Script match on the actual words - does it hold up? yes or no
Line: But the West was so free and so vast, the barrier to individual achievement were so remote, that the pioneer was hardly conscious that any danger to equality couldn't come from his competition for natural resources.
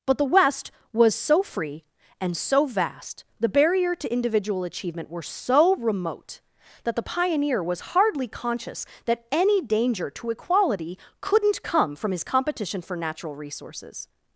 yes